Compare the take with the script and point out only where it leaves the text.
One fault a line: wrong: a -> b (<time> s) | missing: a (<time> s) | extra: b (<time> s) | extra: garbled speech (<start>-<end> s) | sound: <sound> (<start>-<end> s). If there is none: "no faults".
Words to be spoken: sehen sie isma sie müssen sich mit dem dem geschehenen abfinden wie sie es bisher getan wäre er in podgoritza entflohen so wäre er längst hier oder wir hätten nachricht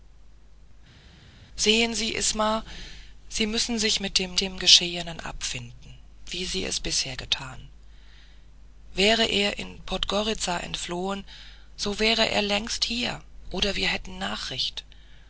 no faults